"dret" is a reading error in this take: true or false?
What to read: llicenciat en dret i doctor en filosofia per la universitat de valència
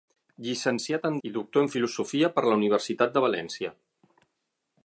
true